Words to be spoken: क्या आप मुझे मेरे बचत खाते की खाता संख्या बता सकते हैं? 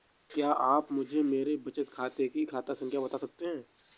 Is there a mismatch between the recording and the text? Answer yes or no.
no